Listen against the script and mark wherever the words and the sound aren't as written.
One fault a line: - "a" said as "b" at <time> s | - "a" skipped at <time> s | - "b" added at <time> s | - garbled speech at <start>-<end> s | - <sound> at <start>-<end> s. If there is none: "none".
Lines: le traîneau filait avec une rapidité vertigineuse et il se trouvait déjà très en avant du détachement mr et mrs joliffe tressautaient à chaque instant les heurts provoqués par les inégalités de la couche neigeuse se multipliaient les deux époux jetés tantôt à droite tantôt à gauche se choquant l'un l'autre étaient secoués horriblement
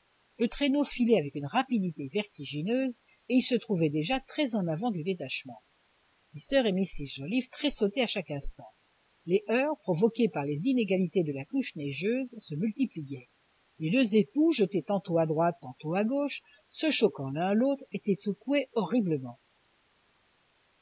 none